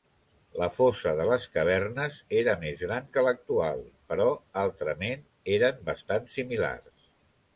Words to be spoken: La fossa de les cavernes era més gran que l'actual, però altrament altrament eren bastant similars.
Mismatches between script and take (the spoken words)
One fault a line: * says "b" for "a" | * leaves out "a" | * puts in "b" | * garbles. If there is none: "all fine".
* leaves out "altrament"